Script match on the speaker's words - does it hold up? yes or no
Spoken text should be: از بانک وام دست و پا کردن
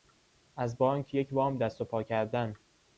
no